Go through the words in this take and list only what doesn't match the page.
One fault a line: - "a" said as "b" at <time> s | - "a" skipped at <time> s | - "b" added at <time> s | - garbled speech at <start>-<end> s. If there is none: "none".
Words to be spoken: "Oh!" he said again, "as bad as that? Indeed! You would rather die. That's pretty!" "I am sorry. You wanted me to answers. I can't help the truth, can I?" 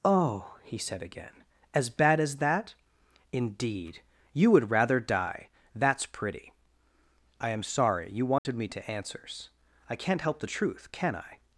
none